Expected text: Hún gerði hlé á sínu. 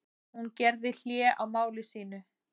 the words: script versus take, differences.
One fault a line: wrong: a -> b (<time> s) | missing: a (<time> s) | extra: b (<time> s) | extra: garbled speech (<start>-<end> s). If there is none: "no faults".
extra: máli (1.6 s)